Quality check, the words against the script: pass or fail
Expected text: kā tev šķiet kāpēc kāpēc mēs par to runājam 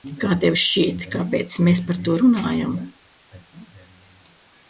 fail